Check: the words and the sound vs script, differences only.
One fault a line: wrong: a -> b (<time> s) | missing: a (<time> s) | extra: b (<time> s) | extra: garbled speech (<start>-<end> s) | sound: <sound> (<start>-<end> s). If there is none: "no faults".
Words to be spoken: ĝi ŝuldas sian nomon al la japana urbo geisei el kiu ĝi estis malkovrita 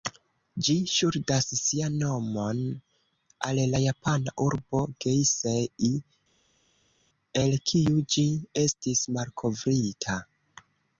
no faults